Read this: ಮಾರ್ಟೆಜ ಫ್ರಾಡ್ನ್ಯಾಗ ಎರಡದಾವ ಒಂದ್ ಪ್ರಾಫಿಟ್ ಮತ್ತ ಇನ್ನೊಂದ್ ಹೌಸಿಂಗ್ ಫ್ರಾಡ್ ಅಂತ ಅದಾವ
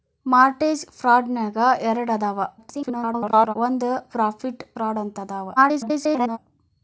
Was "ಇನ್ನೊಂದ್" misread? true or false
true